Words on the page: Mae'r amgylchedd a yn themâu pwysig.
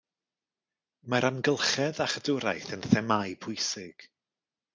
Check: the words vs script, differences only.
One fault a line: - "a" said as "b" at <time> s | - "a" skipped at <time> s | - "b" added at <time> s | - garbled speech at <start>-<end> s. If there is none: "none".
- "chadwraeth" added at 2.1 s